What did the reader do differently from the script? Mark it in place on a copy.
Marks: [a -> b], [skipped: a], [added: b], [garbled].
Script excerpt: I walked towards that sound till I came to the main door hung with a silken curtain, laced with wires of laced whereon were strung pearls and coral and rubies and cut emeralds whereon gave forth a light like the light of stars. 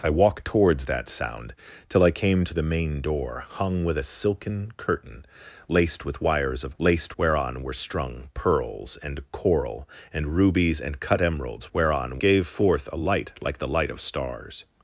I walked towards that sound till I came to the main door hung with a silken curtain, laced with wires of laced whereon were strung pearls and coral and rubies and cut emeralds whereon gave forth a light like the light of stars.